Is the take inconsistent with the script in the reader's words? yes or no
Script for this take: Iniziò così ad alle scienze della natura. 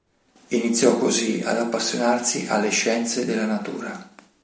yes